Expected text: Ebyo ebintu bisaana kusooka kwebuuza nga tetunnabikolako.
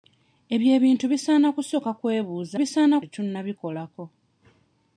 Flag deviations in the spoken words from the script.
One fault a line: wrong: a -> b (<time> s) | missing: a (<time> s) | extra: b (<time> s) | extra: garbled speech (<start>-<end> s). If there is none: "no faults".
wrong: nga -> bisaana (2.6 s)